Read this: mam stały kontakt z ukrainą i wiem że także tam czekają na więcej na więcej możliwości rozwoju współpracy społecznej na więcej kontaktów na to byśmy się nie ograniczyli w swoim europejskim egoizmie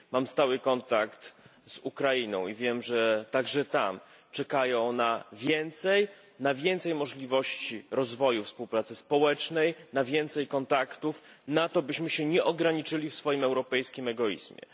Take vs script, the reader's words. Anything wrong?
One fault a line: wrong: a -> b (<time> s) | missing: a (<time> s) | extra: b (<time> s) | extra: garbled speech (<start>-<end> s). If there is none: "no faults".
no faults